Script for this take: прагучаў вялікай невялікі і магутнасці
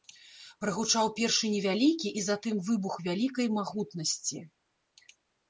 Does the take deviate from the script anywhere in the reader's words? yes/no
yes